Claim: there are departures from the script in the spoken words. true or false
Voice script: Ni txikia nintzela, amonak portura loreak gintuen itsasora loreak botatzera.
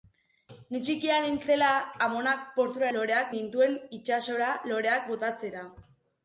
false